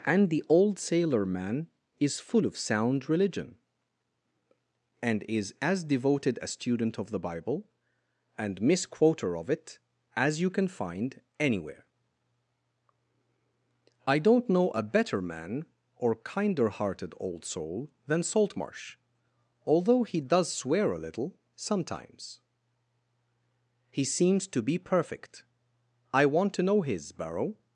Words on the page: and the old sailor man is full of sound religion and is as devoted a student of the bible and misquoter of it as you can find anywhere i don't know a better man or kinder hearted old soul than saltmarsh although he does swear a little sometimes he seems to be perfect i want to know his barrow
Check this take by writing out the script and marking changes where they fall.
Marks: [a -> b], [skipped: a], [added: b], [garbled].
and the old sailor man is full of sound religion and is as devoted a student of the bible and misquoter of it as you can find anywhere i don't know a better man or kinder hearted old soul than saltmarsh although he does swear a little sometimes he seems to be perfect i want to know his barrow